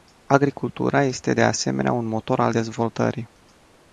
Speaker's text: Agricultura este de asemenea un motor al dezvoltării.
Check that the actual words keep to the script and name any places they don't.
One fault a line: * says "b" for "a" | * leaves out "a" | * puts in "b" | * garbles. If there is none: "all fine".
all fine